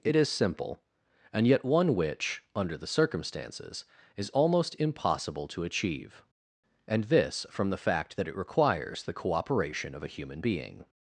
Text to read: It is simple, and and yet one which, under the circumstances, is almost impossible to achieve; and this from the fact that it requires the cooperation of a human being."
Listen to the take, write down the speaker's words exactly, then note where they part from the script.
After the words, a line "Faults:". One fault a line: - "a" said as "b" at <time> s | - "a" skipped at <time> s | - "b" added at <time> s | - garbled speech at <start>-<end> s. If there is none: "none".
It is simple, and yet one which, under the circumstances, is almost impossible to achieve; and this from the fact that it requires the cooperation of a human being."
Faults:
- "and" skipped at 1.5 s